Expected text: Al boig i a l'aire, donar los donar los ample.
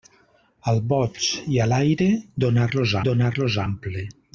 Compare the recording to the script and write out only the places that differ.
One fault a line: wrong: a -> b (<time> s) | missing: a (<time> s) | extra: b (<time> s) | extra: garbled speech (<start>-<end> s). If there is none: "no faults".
no faults